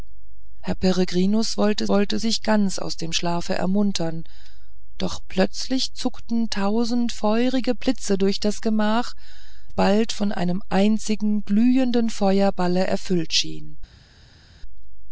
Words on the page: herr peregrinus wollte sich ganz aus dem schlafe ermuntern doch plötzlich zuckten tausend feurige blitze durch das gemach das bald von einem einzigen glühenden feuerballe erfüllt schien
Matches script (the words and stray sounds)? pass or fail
fail